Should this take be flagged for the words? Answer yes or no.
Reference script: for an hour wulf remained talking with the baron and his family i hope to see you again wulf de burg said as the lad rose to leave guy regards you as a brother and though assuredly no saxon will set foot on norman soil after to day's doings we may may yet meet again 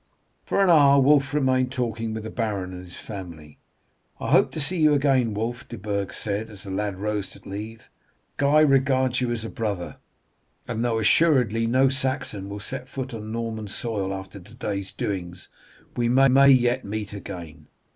no